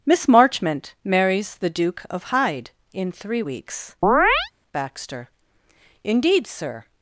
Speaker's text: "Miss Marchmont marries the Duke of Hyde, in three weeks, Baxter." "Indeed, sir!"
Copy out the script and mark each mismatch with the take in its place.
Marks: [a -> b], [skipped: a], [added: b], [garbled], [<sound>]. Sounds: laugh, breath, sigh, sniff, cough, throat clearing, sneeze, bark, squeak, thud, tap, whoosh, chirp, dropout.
"Miss Marchmont marries the Duke of Hyde, in three weeks, [chirp] Baxter." "Indeed, sir!"